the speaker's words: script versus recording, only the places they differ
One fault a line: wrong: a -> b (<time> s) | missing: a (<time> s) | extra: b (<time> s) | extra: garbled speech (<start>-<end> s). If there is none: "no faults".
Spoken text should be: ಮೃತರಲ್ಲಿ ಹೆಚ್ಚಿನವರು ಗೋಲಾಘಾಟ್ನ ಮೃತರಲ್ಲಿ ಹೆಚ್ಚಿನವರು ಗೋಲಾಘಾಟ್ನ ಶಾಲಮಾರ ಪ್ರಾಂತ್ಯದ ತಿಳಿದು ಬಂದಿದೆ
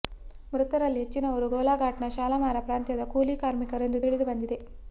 wrong: ಮೃತರಲ್ಲಿ ಹೆಚ್ಚಿನವರು ಗೋಲಾಘಾಟ್ನ ಶಾಲಮಾರ ಪ್ರಾಂತ್ಯದ -> ಶಾಲಮಾರ ಪ್ರಾಂತ್ಯದ ಕೂಲಿ ಕಾರ್ಮಿಕರು ಎಂದು (2.2 s)